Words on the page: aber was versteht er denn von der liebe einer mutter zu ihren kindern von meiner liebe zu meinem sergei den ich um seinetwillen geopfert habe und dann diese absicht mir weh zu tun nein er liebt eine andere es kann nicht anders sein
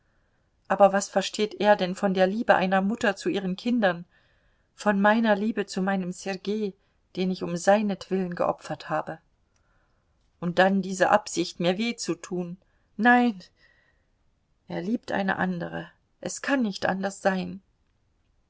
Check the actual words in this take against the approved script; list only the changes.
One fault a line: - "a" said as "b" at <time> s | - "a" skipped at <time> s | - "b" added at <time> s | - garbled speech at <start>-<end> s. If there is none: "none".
none